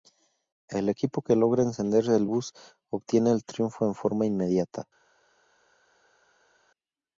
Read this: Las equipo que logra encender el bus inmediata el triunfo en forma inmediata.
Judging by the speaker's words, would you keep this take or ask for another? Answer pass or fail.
fail